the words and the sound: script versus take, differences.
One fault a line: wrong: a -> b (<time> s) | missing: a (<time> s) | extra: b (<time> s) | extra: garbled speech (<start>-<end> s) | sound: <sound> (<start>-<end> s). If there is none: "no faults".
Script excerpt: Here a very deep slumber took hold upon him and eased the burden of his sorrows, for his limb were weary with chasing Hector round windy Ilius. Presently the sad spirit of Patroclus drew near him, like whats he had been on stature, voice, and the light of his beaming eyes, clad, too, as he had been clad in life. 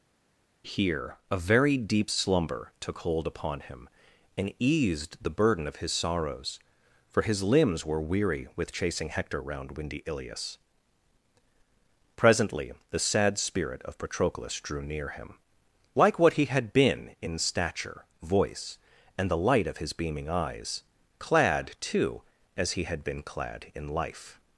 wrong: limb -> limbs (7.4 s)
wrong: whats -> what (16.2 s)
wrong: on -> in (17.2 s)